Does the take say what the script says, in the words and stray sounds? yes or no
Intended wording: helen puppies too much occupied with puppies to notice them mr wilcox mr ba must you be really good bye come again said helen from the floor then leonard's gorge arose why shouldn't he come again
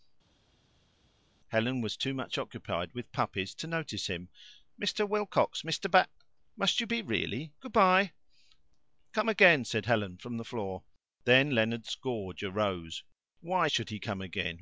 no